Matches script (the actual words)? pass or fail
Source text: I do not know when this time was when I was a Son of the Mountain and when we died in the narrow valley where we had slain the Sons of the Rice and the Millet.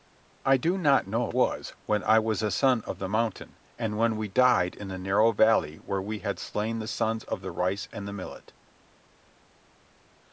fail